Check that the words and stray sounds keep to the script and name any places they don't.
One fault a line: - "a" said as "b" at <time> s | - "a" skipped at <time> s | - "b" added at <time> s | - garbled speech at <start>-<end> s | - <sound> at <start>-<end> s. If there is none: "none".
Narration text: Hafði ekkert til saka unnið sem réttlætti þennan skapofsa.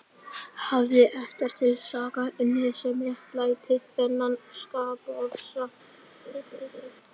- laugh at 6.3-6.9 s